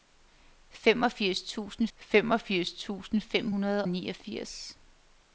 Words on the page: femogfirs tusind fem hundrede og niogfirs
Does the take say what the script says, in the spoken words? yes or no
no